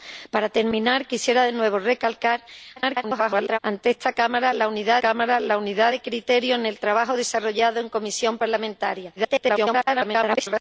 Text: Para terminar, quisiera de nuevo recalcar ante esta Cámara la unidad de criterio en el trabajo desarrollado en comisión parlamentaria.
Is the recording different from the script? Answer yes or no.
yes